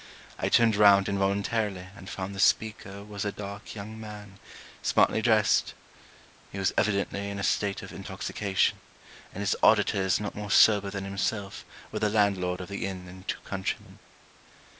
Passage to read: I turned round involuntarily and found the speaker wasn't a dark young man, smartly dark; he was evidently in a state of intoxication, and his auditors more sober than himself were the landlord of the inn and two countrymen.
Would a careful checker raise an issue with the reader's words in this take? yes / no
yes